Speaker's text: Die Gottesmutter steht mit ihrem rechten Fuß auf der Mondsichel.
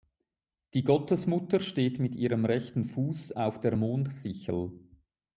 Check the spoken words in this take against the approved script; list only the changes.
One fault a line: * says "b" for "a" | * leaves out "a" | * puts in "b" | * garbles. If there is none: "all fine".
all fine